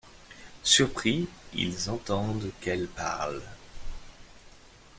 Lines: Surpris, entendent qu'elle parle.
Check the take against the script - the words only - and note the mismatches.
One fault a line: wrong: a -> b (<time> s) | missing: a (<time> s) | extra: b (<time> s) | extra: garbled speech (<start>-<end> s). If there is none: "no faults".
extra: ils (1.5 s)